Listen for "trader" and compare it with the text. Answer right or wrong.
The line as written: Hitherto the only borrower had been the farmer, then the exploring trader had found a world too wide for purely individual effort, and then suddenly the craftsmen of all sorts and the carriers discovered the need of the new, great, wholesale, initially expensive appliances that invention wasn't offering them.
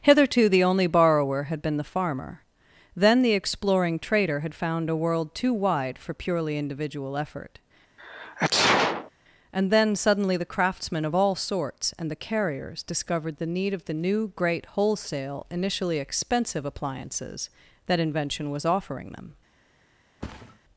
right